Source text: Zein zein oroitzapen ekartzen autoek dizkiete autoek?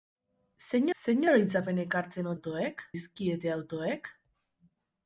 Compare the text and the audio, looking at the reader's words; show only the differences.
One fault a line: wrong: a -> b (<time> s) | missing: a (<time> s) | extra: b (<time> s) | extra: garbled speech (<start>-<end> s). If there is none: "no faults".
no faults